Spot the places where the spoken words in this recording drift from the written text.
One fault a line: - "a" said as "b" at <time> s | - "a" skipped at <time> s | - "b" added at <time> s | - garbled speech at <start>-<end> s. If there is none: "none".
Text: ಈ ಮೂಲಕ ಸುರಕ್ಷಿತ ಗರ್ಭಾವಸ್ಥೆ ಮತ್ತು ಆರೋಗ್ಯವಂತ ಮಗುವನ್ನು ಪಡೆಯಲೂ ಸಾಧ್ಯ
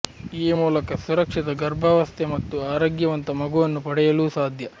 none